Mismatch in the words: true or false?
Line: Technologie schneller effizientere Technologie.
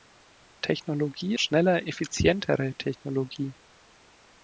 false